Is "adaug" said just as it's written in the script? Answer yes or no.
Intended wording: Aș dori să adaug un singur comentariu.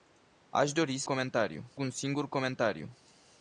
no